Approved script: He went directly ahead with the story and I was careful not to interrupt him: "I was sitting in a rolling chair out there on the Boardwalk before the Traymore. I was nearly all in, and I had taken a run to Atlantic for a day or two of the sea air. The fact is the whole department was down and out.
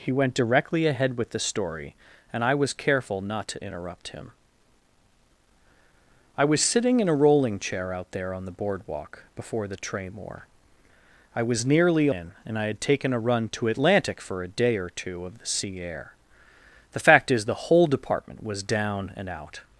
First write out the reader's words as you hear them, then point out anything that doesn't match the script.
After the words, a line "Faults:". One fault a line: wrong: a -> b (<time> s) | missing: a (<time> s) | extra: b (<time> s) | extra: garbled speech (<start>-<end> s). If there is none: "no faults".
He went directly ahead with the story and I was careful not to interrupt him: "I was sitting in a rolling chair out there on the Boardwalk before the Traymore. I was nearly in, and I had taken a run to Atlantic for a day or two of the sea air. The fact is the whole department was down and out.
Faults:
missing: all (12.1 s)